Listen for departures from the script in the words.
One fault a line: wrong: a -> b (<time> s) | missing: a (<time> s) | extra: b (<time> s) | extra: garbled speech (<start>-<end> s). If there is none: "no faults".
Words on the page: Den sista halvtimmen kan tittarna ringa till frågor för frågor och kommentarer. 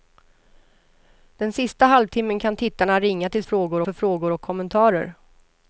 no faults